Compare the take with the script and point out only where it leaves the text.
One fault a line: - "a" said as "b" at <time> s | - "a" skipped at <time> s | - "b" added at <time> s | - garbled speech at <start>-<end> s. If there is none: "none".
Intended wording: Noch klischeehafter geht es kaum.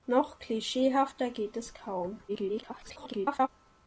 - garbled speech at 2.3-3.5 s